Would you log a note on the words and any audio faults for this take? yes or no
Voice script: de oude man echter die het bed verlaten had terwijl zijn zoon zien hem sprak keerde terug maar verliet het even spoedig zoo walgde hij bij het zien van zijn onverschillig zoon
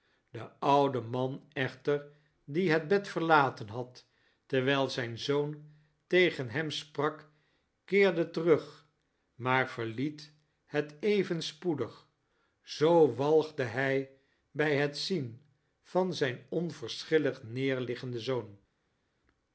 yes